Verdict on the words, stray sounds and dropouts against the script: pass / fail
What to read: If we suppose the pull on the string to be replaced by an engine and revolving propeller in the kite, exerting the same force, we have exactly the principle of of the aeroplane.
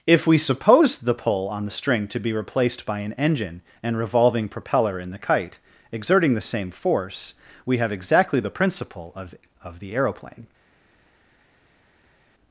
pass